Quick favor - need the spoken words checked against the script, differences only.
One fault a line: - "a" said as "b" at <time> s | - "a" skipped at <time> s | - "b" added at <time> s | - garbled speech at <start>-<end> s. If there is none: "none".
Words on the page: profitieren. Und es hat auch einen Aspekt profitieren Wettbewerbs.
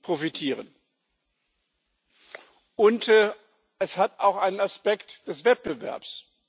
- "profitieren" said as "des" at 5.3 s